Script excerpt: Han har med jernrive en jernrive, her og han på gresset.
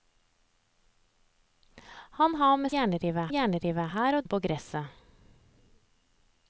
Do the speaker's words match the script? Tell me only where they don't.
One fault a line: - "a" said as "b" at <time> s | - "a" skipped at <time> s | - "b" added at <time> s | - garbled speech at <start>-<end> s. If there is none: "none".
none